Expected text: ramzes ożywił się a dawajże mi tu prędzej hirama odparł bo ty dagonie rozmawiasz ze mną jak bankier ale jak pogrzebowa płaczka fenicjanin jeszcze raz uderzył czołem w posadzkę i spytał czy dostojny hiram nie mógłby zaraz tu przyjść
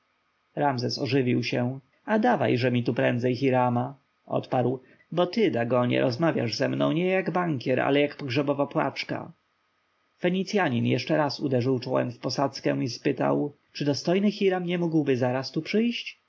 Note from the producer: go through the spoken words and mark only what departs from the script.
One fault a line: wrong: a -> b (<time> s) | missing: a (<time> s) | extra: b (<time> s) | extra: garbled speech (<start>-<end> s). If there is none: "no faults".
extra: nie (6.9 s)